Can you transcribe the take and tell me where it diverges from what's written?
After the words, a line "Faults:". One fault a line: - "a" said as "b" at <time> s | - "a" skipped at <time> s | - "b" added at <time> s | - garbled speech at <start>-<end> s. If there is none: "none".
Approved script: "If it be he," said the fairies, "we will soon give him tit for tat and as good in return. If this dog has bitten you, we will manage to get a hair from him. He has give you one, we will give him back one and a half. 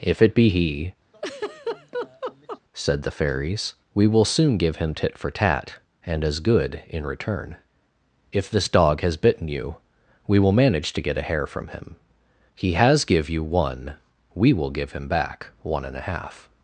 "If it be he," said the fairies, "we will soon give him tit for tat and as good in return. If this dog has bitten you, we will manage to get a hair from him. He has give you one, we will give him back one and a half.
Faults:
none